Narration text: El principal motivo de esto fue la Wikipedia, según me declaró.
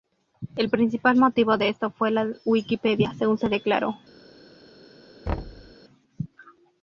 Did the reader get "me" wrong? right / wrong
wrong